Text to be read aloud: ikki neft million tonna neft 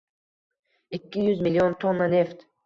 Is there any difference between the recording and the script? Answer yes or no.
yes